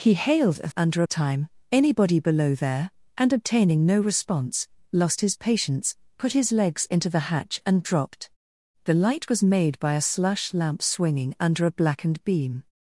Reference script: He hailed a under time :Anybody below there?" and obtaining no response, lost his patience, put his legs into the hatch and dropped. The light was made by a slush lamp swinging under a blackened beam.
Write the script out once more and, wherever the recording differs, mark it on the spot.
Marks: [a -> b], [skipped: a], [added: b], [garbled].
He hailed a under time :Anybody below there?" and obtaining no response, lost his patience, put his legs into the hatch and dropped. The light was made by a slush lamp swinging under a blackened beam.